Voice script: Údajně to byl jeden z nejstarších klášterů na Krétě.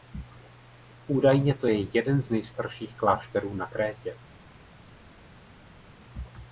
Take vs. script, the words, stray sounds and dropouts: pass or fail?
fail